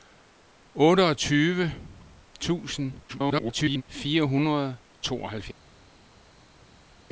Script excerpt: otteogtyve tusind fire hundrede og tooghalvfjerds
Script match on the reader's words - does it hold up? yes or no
no